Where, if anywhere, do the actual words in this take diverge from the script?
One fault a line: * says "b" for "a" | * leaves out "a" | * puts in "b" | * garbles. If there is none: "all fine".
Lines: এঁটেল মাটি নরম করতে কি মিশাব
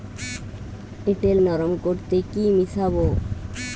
* leaves out "মাটি"